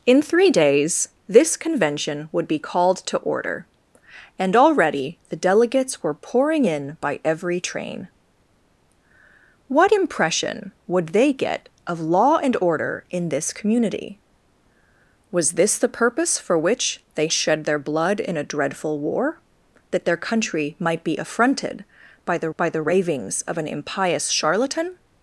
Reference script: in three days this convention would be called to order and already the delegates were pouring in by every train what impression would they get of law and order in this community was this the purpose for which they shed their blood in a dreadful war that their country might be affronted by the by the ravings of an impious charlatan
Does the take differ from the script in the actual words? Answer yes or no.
no